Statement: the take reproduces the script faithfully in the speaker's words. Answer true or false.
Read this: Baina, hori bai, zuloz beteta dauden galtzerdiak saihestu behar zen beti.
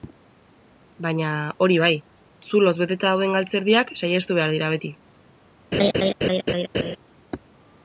false